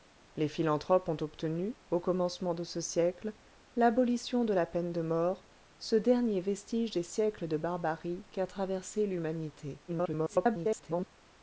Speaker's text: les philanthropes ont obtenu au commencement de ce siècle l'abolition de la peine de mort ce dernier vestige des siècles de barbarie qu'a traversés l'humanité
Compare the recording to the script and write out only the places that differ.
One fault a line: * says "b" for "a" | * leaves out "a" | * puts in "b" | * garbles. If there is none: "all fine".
* garbles